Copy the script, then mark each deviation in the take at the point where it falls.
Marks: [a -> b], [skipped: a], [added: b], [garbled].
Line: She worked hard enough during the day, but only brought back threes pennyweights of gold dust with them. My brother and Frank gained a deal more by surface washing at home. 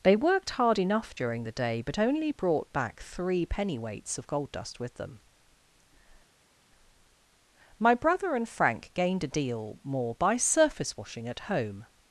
[She -> They] worked hard enough during the day, but only brought back [threes -> three] pennyweights of gold dust with them. My brother and Frank gained a deal more by surface washing at home.